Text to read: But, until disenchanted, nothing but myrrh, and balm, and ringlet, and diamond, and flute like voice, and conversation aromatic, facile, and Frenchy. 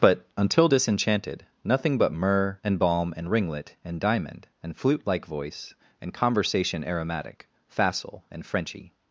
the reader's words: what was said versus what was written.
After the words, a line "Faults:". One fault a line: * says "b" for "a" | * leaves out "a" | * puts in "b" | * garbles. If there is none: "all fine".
But, until disenchanted, nothing but myrrh, and balm, and ringlet, and diamond, and flute like voice, and conversation aromatic, facile, and Frenchy.
Faults:
all fine